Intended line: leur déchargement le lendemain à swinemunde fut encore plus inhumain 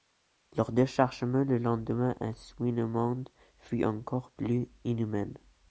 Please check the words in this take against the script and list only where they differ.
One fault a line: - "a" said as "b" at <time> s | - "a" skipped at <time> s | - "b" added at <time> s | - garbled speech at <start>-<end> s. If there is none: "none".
none